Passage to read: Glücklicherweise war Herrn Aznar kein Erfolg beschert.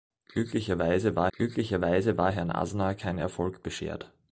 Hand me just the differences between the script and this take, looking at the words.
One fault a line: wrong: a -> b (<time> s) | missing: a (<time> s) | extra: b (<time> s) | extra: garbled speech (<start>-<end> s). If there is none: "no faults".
extra: glücklicherweise war (1.3 s)